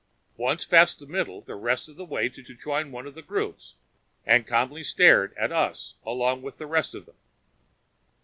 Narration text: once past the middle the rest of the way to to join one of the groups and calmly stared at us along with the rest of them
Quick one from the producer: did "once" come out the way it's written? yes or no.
yes